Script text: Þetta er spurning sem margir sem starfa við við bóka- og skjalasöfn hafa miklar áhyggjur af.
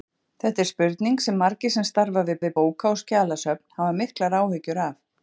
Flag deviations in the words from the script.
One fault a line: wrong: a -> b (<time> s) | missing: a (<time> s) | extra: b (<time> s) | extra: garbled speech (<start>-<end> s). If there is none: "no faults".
no faults